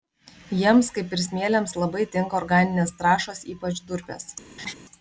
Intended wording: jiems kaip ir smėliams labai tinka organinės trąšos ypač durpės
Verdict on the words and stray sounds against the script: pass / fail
fail